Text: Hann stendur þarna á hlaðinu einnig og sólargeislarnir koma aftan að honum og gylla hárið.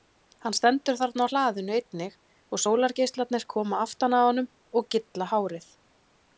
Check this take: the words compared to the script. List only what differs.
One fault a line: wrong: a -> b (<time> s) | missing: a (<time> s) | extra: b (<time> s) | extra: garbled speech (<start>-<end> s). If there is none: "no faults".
no faults